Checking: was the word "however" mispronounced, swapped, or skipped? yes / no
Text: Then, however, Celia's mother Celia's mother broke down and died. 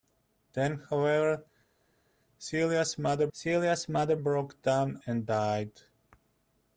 no